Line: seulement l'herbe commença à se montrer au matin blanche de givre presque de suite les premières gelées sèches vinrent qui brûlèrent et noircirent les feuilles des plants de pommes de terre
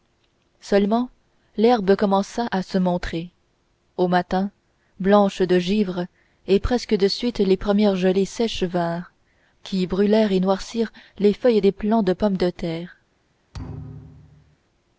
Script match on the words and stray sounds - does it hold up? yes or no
no